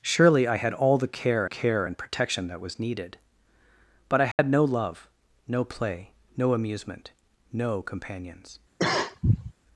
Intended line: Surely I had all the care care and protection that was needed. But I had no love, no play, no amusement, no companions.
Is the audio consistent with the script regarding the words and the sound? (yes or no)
no